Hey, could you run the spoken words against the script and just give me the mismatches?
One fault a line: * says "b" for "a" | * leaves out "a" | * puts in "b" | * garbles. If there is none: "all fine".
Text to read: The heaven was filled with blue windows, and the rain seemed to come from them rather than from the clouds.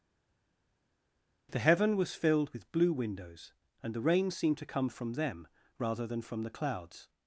all fine